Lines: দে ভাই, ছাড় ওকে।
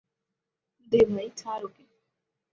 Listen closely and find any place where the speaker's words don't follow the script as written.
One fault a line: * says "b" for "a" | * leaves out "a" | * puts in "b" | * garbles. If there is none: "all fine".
all fine